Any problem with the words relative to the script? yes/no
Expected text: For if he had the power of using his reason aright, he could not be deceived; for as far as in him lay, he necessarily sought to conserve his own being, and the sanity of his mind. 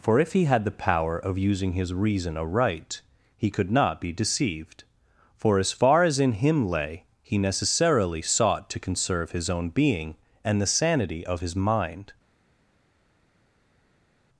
no